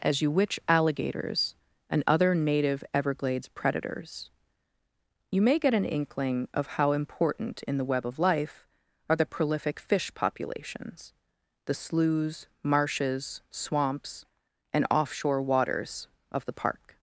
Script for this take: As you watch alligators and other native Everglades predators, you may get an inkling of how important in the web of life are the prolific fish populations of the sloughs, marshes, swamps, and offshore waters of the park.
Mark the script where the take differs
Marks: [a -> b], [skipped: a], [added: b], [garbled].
As you [watch -> witch] alligators and other native Everglades predators, you may get an inkling of how important in the web of life are the prolific fish populations [skipped: of] the sloughs, marshes, swamps, and offshore waters of the park.